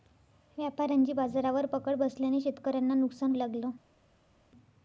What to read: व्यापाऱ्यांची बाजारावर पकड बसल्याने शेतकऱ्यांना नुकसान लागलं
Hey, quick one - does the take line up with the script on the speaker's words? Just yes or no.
yes